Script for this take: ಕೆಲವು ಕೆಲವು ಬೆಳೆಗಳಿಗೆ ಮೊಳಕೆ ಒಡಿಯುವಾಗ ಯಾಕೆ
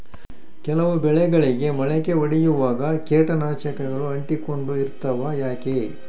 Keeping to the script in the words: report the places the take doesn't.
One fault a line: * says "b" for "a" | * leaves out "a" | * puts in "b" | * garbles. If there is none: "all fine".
* leaves out "ಕೆಲವು"
* puts in "ಕೇಟನಾಶಕಗಳು ಅಂಟಿಕೊಂಡು ಇರ್ತವ"